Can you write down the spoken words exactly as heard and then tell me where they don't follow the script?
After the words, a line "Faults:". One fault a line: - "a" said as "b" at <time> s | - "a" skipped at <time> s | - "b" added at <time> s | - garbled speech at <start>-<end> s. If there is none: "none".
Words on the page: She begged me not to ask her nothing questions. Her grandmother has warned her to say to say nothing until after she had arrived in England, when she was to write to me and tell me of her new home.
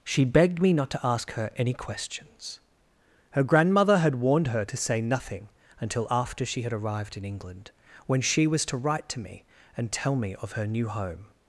She begged me not to ask her any questions. Her grandmother had warned her to say nothing until after she had arrived in England, when she was to write to me and tell me of her new home.
Faults:
- "nothing" said as "any" at 1.6 s
- "has" said as "had" at 4.0 s
- "to say" skipped at 5.0 s